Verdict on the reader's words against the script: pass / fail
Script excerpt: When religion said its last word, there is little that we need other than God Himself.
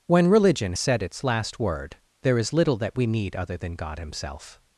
pass